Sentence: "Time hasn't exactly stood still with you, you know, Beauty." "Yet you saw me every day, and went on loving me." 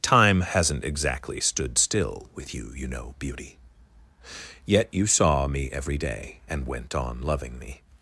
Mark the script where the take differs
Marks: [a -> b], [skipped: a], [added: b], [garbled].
"Time hasn't exactly stood still with you, you know, Beauty." "Yet you saw me every day, and went on loving me."